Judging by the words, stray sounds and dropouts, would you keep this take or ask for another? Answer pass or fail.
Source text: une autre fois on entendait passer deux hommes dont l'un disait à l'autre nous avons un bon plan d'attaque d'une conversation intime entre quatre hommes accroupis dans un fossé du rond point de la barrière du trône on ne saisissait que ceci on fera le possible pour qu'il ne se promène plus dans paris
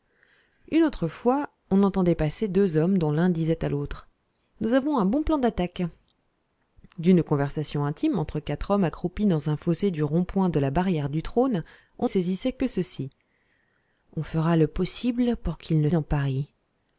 fail